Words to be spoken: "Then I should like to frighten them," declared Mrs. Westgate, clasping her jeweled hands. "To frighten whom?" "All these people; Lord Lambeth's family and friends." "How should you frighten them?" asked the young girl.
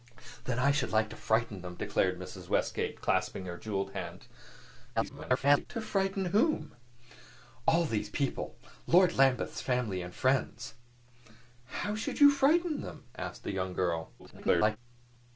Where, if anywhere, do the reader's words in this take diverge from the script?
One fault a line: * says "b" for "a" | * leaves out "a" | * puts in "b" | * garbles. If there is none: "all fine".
* garbles
* garbles